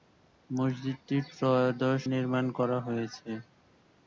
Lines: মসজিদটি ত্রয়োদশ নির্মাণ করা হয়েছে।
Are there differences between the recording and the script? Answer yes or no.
no